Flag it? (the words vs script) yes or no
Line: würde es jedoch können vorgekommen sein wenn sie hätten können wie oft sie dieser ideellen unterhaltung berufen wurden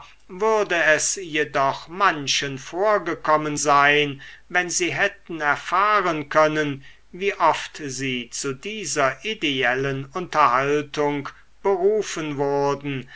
yes